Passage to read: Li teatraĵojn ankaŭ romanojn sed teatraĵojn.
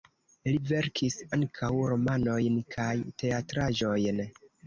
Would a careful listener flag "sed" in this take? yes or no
yes